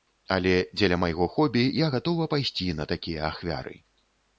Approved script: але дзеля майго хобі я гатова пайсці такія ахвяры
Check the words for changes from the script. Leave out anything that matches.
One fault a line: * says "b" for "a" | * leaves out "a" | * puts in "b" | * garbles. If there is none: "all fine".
* puts in "на"